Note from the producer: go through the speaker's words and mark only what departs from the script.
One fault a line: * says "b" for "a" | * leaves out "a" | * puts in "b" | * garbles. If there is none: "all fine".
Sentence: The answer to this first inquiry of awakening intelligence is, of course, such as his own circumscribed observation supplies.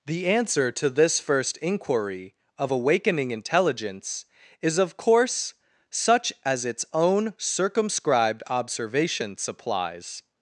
* says "its" for "his"